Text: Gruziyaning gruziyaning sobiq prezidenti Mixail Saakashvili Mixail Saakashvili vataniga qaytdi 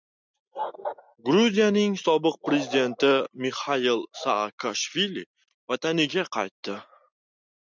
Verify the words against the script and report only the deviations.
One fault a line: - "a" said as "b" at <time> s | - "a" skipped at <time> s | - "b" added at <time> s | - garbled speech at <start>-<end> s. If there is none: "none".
- "gruziyaning" skipped at 2.0 s
- "Mixail Saakashvili" skipped at 5.3 s